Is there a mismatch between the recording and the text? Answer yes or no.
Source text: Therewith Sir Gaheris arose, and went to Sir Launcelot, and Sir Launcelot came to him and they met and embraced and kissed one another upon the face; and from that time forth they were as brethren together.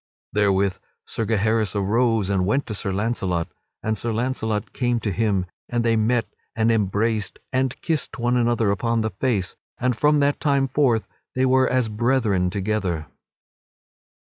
no